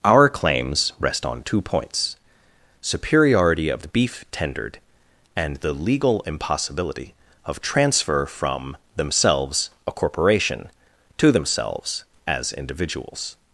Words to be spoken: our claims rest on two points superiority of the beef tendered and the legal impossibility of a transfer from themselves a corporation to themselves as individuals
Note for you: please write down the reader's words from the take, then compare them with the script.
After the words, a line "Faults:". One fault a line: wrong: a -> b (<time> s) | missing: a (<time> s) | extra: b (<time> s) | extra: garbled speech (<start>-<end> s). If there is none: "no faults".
our claims rest on two points superiority of the beef tendered and the legal impossibility of transfer from themselves a corporation to themselves as individuals
Faults:
missing: a (7.6 s)